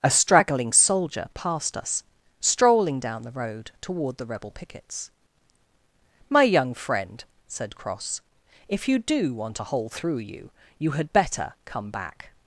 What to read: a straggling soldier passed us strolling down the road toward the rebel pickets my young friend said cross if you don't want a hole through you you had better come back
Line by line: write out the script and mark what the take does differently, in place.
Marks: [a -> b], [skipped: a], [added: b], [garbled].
a straggling soldier passed us strolling down the road toward the rebel pickets my young friend said cross if you [don't -> do] want a hole through you you had better come back